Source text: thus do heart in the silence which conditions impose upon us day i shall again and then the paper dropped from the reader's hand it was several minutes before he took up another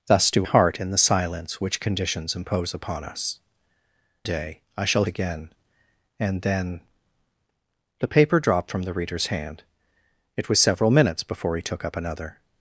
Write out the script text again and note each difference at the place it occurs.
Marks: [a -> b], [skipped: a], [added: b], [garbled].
thus do heart in the silence which conditions impose upon us day i shall again and then the paper dropped from the reader's hand it was several minutes before he took up another